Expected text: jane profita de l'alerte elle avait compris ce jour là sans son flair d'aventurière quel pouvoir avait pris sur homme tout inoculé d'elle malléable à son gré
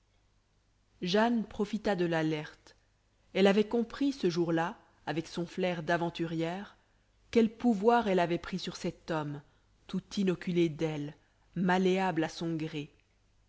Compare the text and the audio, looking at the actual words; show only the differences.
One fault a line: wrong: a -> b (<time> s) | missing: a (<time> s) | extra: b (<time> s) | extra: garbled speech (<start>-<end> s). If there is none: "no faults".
wrong: sans -> avec (5.0 s)
extra: elle (8.1 s)
extra: cet (8.8 s)